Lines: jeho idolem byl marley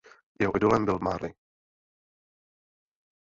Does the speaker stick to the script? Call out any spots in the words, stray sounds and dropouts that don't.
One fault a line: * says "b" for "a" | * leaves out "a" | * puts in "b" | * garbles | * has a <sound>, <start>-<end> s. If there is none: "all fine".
all fine